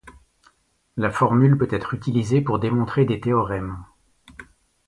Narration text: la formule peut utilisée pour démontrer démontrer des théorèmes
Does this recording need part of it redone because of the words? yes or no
yes